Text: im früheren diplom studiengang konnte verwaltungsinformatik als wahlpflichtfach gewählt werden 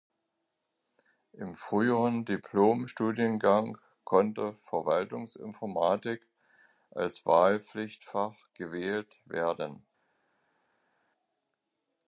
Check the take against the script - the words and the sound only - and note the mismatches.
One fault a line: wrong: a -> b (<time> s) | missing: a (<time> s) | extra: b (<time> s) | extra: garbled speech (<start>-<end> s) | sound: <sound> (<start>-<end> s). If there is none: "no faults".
no faults